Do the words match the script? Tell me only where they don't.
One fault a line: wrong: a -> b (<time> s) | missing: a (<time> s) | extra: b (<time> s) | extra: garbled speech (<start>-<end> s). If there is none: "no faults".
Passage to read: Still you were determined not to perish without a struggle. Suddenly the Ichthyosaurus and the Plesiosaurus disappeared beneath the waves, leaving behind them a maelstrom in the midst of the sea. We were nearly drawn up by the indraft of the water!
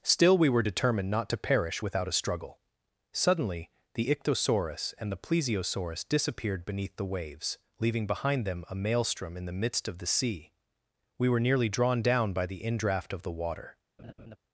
wrong: you -> we (0.4 s)
wrong: up -> down (12.0 s)